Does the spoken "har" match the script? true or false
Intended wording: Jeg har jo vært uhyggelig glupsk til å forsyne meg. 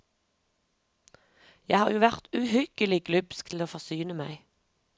true